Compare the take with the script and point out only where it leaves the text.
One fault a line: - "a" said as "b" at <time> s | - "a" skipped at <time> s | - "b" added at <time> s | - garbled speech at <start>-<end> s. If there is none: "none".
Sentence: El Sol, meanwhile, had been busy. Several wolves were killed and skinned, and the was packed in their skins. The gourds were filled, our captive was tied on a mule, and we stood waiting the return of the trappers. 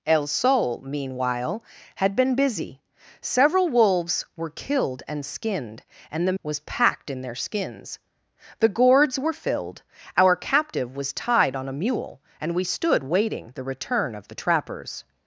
none